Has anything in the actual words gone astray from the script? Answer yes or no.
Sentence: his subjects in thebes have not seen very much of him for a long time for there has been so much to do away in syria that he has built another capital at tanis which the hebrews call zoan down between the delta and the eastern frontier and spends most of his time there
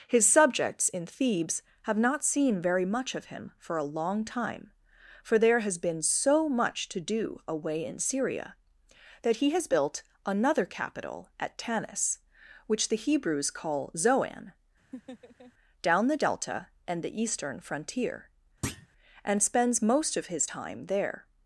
yes